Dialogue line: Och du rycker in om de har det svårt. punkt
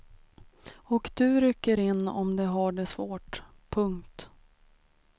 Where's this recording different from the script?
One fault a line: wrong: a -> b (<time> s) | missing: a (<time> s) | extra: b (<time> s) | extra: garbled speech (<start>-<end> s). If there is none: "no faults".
no faults